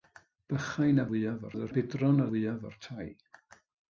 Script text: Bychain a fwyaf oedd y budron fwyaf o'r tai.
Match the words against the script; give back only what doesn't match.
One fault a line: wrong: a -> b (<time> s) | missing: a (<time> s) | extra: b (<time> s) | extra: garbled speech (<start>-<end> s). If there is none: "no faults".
no faults